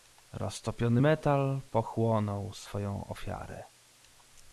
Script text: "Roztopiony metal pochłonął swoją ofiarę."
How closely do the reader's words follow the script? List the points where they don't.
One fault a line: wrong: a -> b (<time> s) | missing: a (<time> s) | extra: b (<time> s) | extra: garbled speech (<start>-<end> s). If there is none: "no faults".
no faults